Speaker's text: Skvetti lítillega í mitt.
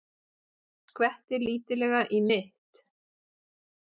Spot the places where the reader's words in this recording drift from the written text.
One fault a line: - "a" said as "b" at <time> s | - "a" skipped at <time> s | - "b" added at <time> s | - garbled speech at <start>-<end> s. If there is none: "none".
none